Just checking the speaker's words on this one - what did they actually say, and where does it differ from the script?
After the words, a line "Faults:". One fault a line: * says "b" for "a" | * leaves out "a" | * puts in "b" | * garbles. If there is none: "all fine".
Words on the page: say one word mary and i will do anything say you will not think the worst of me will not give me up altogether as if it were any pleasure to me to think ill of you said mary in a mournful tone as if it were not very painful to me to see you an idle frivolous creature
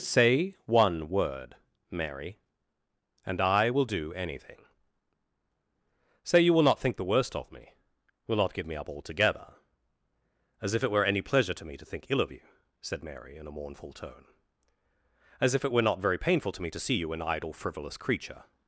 say one word mary and i will do anything say you will not think the worst of me will not give me up altogether as if it were any pleasure to me to think ill of you said mary in a mournful tone as if it were not very painful to me to see you an idle frivolous creature
Faults:
all fine